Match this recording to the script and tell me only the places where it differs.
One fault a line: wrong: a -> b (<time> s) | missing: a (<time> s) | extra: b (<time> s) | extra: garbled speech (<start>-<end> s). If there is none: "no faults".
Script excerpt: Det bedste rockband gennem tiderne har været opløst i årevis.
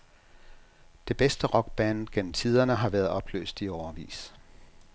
no faults